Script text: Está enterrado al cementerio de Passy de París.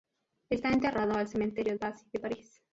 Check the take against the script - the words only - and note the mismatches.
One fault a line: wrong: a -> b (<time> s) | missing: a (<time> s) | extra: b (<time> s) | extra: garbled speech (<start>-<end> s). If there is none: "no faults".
missing: de (1.8 s)